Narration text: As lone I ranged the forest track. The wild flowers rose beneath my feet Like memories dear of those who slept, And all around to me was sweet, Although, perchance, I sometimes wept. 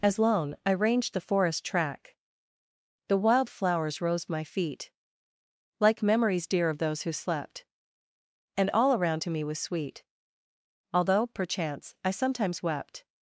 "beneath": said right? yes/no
no